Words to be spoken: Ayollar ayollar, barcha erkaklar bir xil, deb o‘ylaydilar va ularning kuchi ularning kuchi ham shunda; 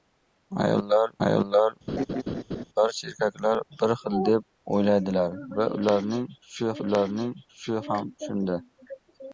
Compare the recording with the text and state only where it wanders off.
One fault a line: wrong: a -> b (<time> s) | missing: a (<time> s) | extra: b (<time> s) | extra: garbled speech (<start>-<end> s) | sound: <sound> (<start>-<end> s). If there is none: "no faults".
sound: laugh (1.9-2.6 s)